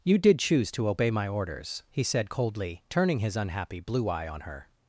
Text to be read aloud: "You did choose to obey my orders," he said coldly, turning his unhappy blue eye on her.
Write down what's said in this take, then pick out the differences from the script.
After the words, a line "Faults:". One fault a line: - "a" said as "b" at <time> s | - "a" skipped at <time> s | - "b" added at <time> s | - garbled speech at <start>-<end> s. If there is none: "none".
"You did choose to obey my orders," he said coldly, turning his unhappy blue eye on her.
Faults:
none